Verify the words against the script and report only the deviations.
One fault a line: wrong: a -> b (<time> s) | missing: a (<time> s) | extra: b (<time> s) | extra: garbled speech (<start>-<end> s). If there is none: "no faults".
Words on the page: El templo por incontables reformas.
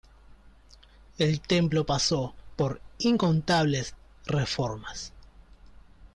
extra: pasó (1.8 s)